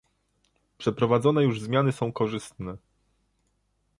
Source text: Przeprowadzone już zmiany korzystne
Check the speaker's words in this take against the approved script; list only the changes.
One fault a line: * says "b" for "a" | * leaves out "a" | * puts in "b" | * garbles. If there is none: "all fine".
* puts in "są"